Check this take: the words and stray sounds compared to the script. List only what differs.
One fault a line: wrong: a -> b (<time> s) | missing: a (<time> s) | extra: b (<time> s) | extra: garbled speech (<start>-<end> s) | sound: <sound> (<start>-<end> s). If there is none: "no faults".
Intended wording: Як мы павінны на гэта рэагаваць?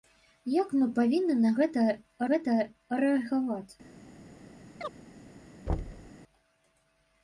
extra: гэта (2.3 s)
sound: chirp (4.8-4.9 s)
sound: thud (5.7-6.1 s)